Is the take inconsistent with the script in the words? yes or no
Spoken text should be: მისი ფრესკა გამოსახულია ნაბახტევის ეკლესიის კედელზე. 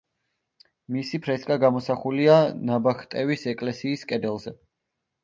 no